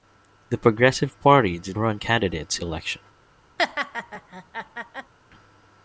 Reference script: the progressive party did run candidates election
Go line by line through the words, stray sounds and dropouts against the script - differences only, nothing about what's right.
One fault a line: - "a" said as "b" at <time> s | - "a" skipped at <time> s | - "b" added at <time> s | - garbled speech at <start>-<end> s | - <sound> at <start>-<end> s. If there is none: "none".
- laugh at 3.6-5.1 s